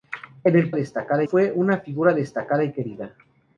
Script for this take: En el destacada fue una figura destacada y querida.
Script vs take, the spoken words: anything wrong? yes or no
no